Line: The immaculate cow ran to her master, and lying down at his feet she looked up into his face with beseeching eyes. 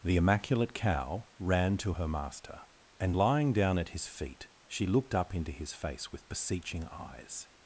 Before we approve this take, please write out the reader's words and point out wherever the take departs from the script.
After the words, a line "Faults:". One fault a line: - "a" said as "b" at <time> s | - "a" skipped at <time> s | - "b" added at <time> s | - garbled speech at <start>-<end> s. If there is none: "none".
The immaculate cow ran to her master, and lying down at his feet she looked up into his face with beseeching eyes.
Faults:
none